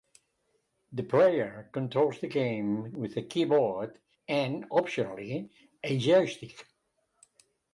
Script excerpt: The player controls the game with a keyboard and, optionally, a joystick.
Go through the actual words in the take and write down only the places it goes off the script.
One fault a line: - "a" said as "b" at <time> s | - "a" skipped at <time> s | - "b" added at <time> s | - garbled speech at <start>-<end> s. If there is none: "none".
none